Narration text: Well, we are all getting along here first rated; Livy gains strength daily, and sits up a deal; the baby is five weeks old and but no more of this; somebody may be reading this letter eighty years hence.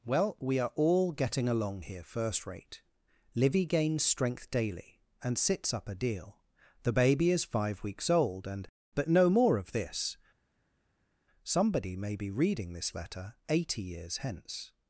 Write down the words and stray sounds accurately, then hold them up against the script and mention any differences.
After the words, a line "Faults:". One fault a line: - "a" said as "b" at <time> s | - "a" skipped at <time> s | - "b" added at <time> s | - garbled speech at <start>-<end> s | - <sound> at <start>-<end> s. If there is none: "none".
Well, we are all getting along here first rate; Livy gains strength daily, and sits up a deal; the baby is five weeks old and but no more of this; somebody may be reading this letter eighty years hence.
Faults:
- "rated" said as "rate" at 2.5 s